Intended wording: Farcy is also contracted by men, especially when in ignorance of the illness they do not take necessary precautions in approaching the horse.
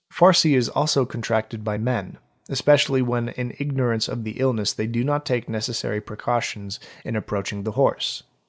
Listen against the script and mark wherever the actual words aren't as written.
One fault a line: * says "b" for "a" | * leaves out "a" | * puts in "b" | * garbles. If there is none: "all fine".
all fine